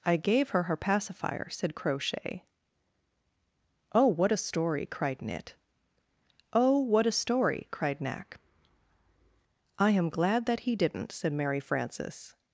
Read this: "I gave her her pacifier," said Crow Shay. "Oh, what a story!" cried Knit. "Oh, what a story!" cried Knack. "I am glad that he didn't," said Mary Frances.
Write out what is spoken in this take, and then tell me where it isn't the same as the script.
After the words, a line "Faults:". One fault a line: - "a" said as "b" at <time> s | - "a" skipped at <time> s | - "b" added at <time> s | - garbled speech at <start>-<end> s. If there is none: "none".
"I gave her her pacifier," said Crow Shay. "Oh, what a story!" cried Knit. "Oh, what a story!" cried Knack. "I am glad that he didn't," said Mary Frances.
Faults:
none